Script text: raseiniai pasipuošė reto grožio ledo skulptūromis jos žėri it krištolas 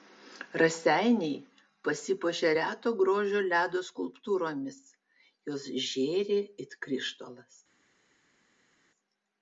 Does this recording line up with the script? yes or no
yes